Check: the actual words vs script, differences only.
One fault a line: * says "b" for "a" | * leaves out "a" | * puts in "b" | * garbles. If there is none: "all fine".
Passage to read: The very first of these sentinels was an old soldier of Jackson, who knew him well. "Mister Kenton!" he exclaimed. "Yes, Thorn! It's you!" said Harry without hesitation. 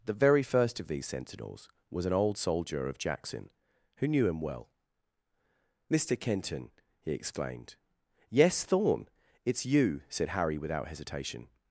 all fine